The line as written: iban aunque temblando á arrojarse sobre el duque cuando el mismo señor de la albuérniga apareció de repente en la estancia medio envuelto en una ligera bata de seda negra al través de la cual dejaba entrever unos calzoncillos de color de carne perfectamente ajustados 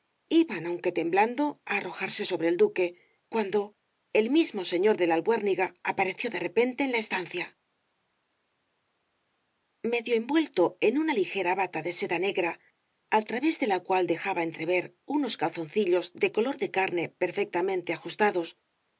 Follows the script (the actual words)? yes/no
yes